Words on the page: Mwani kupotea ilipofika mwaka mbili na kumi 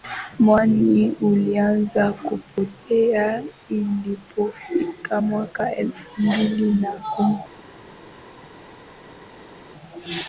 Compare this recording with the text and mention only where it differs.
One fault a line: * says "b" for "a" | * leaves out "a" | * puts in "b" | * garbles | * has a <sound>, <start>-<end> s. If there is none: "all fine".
* puts in "ulianza"
* puts in "elfu"